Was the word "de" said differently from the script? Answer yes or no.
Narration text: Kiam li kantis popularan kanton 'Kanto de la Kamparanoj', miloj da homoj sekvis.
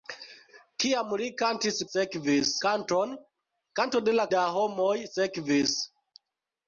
no